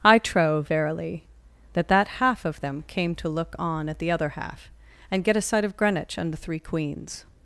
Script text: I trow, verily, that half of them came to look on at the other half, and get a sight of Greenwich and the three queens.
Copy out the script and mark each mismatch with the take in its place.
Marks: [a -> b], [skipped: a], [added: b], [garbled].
I trow, verily, that [added: that] half of them came to look on at the other half, and get a sight of Greenwich and the three queens.